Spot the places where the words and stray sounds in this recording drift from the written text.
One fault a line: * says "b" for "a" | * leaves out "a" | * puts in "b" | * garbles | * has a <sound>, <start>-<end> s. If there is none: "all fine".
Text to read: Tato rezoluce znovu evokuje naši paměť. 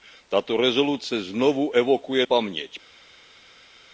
* leaves out "naši"